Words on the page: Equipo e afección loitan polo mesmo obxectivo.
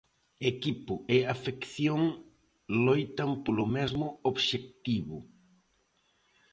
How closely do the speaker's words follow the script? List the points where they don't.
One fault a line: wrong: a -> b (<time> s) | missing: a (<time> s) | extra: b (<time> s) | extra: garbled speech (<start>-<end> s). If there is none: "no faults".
no faults